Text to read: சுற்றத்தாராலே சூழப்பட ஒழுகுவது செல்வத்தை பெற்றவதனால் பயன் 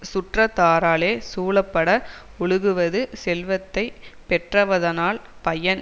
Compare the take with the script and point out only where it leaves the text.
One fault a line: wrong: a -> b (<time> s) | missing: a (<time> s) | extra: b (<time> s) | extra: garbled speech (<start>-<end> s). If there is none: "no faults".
no faults